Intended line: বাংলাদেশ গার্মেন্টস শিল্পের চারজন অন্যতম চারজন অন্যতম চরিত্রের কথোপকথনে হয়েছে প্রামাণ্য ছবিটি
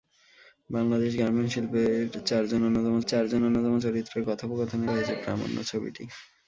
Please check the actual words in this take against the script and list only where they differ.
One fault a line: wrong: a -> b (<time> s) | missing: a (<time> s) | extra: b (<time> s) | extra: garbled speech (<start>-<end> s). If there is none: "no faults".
no faults